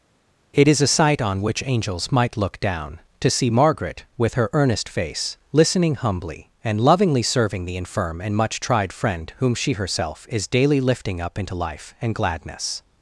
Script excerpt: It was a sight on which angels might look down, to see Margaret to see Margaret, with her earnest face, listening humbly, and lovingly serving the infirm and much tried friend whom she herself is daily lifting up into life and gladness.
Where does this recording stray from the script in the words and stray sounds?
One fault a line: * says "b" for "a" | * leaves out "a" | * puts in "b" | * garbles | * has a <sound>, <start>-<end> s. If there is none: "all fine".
* says "is" for "was"
* leaves out "to see Margaret"